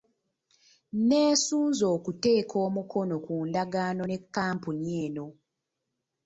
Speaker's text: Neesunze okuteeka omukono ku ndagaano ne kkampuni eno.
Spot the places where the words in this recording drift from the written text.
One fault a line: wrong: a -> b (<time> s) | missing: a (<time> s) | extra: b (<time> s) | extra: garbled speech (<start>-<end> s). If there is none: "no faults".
no faults